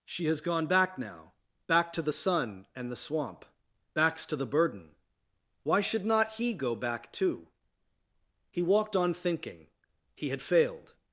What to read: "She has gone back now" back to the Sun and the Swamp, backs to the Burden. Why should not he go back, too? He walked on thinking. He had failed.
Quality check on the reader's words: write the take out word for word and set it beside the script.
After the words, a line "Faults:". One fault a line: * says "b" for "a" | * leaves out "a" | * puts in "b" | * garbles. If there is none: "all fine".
"She has gone back now" back to the Sun and the Swamp, backs to the Burden. Why should not he go back, too? He walked on thinking. He had failed.
Faults:
all fine